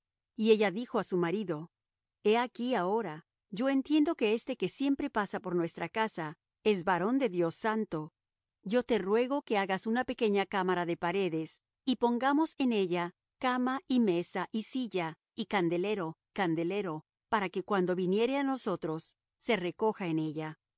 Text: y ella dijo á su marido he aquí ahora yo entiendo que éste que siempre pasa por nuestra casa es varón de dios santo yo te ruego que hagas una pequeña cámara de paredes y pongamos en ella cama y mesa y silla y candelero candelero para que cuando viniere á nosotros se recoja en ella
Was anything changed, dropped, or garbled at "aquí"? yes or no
no